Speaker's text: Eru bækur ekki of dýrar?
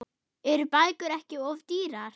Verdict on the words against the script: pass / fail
pass